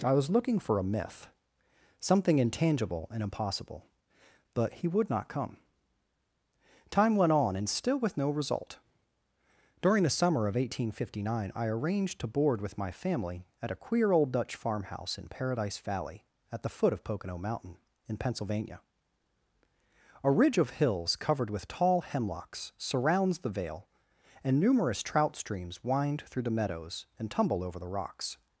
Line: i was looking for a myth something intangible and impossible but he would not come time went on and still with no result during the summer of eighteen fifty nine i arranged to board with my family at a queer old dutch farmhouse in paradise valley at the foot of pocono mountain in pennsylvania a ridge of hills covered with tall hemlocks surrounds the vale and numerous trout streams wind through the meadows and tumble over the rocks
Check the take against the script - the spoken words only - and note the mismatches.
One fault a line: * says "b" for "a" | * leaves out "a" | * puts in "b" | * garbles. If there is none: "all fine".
all fine